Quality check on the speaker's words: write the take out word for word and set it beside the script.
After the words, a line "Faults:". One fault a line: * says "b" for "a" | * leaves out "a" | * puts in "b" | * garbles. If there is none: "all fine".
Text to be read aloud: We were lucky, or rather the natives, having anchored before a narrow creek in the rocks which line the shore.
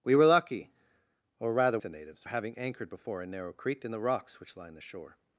We were lucky, or rather the natives, having anchored before a narrow creek in the rocks which line the shore.
Faults:
all fine